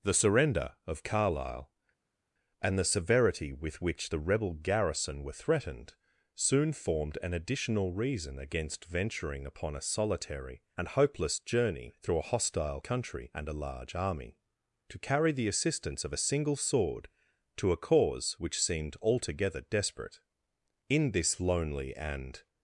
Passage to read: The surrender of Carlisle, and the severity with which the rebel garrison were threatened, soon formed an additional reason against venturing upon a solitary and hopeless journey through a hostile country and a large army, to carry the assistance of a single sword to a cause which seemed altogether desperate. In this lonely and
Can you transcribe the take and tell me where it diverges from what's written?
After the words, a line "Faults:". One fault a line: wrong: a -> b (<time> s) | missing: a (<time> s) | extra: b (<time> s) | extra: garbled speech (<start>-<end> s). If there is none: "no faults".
The surrender of Carlisle, and the severity with which the rebel garrison were threatened, soon formed an additional reason against venturing upon a solitary and hopeless journey through a hostile country and a large army, to carry the assistance of a single sword to a cause which seemed altogether desperate. In this lonely and
Faults:
no faults